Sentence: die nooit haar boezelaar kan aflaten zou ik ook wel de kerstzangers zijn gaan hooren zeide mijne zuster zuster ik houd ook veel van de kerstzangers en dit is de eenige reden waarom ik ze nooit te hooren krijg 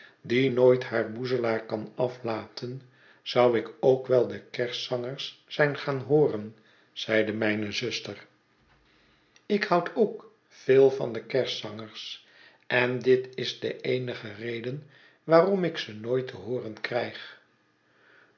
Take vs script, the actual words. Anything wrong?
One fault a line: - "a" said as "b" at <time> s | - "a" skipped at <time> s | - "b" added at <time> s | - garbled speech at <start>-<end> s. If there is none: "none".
- "zuster" skipped at 8.3 s